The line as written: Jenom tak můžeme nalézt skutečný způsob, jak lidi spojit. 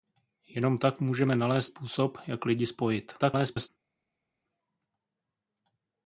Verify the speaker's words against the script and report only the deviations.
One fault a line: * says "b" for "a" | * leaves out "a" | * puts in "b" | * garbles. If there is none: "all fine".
* leaves out "skutečný"
* garbles